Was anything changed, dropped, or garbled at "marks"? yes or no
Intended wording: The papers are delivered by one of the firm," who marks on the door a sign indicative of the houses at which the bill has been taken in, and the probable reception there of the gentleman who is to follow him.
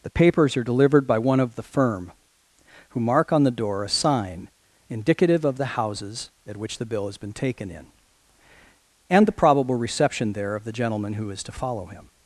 yes